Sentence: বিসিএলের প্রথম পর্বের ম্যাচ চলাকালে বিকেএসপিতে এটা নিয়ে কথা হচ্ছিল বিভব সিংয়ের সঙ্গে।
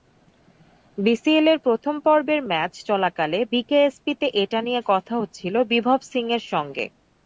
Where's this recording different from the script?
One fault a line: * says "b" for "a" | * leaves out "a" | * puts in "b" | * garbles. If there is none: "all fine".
all fine